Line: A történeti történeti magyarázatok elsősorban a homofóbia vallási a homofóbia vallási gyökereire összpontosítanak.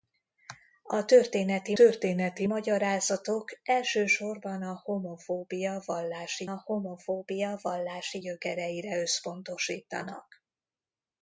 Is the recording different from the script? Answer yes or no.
no